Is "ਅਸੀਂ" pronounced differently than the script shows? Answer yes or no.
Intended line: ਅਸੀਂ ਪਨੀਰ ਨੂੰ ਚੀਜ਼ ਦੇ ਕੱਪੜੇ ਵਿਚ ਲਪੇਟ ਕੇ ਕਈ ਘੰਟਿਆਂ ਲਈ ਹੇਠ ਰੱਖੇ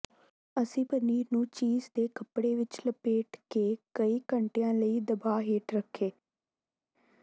no